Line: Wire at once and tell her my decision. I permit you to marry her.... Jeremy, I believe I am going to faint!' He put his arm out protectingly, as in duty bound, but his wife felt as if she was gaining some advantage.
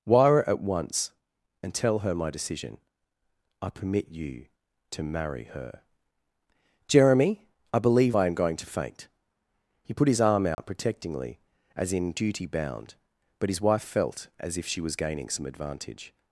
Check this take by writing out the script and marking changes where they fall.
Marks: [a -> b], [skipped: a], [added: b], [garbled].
Wire at once and tell her my decision. I permit you to marry her.... Jeremy, I believe I am going to faint!' He put his arm out protectingly, as in duty bound, but his wife felt as if she was gaining some advantage.